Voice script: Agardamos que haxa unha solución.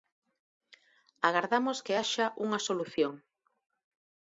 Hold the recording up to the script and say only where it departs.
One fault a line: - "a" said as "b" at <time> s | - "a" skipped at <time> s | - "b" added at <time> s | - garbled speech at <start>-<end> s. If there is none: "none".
none